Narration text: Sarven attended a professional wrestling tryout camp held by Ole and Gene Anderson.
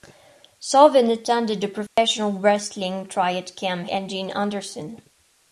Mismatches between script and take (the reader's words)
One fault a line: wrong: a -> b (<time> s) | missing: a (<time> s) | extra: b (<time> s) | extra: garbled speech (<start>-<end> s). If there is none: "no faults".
missing: held by Ole (3.9 s)